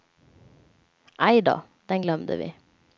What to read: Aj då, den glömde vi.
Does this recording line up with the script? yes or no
yes